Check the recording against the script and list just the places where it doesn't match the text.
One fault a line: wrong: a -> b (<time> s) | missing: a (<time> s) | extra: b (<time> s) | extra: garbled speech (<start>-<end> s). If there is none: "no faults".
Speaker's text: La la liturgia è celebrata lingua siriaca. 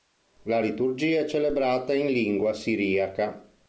missing: la (0.6 s)
extra: in (1.9 s)